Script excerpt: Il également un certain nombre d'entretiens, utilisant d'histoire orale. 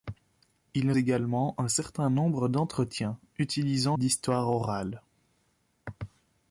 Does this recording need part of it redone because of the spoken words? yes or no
no